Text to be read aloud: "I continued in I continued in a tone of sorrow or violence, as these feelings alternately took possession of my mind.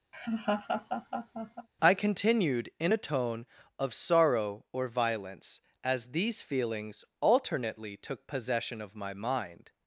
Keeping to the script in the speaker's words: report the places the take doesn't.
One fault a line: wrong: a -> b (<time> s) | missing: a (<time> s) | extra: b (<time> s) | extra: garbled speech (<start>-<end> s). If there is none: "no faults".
missing: I continued in (2.9 s)